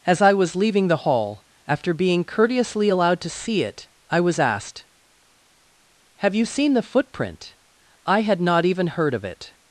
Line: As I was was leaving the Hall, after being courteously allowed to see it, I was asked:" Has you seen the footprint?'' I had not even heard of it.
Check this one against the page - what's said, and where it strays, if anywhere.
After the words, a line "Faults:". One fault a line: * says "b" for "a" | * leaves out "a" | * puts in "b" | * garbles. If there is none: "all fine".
As I was leaving the Hall, after being courteously allowed to see it, I was asked:" Have you seen the footprint?'' I had not even heard of it.
Faults:
* leaves out "was"
* says "Have" for "Has"